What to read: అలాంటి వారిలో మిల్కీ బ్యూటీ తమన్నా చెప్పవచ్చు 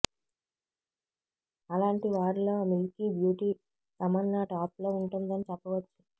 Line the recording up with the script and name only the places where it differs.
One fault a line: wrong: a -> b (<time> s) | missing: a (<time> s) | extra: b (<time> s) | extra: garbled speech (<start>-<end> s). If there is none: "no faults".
extra: టాప్ లో ఉంటుందని (4.5 s)